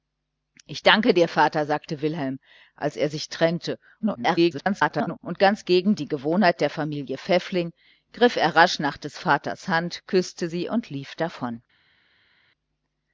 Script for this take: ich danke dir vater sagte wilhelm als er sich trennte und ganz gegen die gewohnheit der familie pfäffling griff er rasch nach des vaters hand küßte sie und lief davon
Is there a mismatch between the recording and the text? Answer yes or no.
yes